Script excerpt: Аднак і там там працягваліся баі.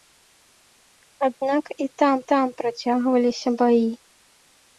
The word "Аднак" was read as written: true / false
true